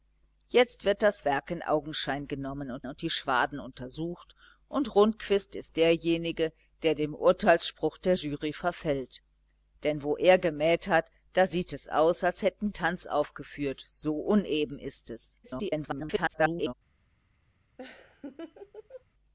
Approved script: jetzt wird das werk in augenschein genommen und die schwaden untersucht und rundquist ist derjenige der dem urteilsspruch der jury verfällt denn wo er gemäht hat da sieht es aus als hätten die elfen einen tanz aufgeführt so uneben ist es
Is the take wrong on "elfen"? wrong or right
wrong